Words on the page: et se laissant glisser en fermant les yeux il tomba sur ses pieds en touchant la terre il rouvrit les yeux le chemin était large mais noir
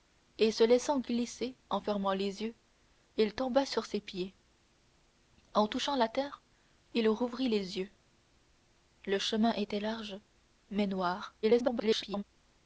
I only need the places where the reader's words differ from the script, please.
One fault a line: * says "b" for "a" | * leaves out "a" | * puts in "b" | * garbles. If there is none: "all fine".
* garbles